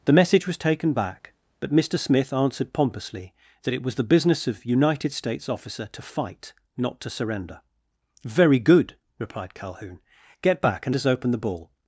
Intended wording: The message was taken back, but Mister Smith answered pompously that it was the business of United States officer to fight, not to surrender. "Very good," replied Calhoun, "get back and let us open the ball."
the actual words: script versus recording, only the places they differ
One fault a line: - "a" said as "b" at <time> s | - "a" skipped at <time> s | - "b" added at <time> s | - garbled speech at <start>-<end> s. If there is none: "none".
- "let" skipped at 10.9 s